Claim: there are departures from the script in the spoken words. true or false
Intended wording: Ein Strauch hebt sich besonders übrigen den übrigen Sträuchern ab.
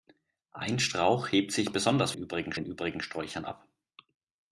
false